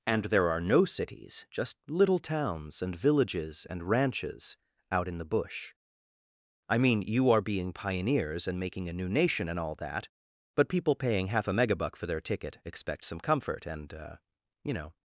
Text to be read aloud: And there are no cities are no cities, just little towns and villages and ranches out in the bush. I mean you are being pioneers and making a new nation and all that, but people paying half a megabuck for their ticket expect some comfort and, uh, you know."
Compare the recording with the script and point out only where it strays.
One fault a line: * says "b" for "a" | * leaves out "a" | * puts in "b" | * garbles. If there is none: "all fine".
* leaves out "are no cities"